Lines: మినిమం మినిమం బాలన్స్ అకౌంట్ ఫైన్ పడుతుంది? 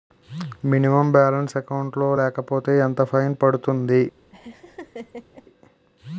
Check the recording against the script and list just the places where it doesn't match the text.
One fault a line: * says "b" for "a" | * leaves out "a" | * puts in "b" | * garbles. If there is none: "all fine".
* leaves out "మినిమం"
* puts in "లో లేకపోతే ఎంత"